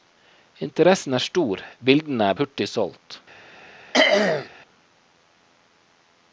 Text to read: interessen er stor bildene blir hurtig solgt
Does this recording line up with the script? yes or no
no